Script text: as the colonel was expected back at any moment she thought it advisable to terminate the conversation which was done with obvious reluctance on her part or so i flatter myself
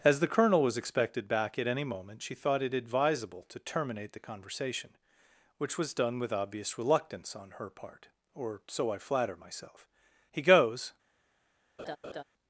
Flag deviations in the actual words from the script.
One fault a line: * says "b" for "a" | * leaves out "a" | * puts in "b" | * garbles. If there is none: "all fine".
* puts in "he goes"